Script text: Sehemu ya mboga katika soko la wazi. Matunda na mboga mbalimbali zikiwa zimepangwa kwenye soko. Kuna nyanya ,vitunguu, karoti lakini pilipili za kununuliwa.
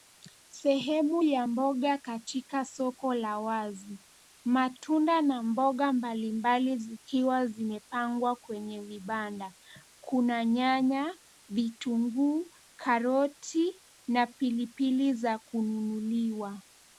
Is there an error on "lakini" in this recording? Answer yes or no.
yes